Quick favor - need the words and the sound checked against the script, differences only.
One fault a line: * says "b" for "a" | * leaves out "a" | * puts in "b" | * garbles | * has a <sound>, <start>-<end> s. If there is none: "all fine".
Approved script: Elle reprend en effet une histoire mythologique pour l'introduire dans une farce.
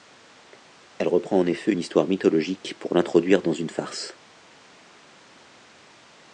all fine